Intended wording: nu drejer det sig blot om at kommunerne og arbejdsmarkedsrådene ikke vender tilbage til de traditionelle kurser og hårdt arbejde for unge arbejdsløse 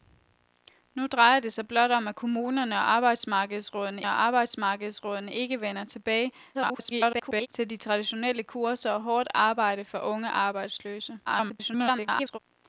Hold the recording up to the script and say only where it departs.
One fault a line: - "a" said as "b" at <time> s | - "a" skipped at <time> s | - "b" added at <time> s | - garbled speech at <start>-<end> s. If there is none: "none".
- "og arbejdsmarkedsrådene" added at 4.1 s
- garbled speech at 6.5-7.5 s
- garbled speech at 11.3-12.4 s